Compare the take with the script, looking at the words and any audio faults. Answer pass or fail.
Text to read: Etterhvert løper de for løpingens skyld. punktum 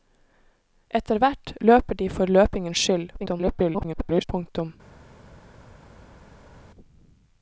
fail